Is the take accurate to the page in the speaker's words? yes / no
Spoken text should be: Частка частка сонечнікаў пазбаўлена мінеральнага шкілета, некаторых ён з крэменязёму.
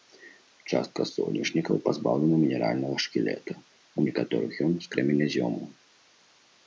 no